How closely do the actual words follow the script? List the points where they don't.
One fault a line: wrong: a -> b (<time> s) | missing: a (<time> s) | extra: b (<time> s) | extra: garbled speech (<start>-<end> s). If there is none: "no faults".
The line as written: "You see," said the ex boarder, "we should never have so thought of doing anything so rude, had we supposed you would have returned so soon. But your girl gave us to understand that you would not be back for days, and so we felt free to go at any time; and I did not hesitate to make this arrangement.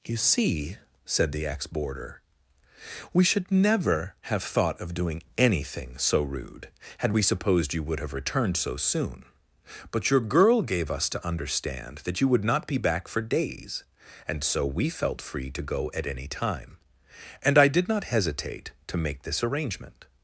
missing: so (4.4 s)